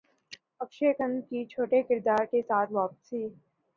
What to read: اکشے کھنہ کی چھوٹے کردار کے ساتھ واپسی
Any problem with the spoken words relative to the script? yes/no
no